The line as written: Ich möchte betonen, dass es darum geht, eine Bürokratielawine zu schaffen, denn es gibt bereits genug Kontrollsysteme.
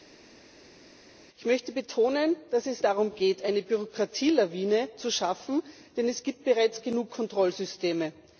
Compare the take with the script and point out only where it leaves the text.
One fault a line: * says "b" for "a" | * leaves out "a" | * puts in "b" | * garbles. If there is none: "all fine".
all fine